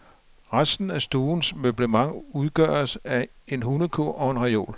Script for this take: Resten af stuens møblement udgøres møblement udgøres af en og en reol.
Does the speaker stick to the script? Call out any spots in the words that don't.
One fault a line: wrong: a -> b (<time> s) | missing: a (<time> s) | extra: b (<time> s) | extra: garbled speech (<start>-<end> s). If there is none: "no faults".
missing: møblement udgøres (3.0 s)
extra: hundekurv (3.6 s)